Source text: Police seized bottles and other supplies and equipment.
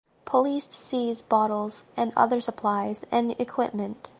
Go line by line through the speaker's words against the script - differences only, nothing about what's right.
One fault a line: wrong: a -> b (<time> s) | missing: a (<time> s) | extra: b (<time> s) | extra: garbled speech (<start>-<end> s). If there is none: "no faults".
no faults